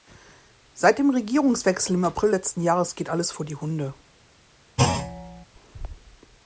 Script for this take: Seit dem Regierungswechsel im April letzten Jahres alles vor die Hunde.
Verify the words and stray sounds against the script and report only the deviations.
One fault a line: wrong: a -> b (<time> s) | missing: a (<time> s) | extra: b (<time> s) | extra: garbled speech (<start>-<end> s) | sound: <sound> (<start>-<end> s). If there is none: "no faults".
extra: geht (3.0 s)
sound: thud (4.8-5.5 s)